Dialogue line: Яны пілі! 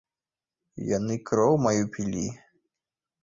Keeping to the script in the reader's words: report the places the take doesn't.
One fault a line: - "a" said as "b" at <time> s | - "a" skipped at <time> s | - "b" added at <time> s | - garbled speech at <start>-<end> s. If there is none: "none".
- "кроў маю" added at 1.3 s